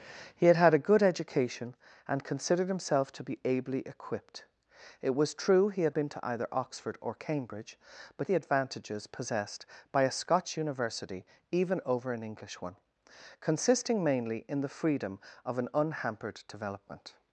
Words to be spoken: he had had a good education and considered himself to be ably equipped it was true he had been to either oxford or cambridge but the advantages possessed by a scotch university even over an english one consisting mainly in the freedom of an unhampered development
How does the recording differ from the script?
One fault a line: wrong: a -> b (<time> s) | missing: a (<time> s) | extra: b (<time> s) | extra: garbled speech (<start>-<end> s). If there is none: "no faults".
no faults